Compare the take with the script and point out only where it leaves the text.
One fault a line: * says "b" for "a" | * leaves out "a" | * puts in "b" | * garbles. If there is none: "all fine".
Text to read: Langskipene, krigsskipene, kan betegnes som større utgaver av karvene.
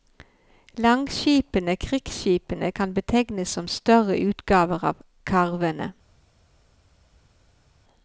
all fine